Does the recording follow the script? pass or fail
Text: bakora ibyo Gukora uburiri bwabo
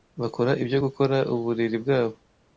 pass